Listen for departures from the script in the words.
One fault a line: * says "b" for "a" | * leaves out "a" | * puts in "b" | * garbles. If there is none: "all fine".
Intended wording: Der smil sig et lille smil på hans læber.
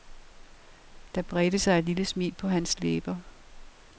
* says "bredte" for "smil"